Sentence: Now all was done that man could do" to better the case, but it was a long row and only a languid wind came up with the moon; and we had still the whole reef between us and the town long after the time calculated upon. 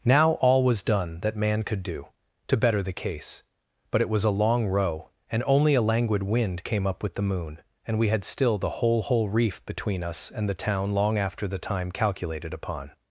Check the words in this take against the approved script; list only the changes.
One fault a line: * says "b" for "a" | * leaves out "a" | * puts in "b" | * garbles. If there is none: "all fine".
* puts in "whole"